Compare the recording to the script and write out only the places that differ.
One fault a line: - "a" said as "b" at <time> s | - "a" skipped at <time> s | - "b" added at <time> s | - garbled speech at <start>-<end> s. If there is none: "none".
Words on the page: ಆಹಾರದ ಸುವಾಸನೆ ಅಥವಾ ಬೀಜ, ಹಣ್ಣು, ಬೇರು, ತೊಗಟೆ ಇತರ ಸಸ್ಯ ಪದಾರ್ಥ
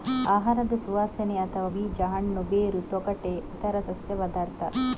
none